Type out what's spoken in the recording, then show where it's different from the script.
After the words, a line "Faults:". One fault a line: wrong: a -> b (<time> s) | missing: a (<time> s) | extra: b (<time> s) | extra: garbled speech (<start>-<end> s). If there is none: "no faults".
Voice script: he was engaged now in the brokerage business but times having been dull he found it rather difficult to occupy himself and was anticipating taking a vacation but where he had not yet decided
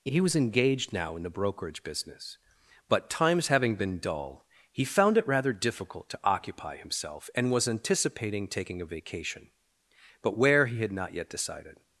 he was engaged now in the brokerage business but times having been dull he found it rather difficult to occupy himself and was anticipating taking a vacation but where he had not yet decided
Faults:
no faults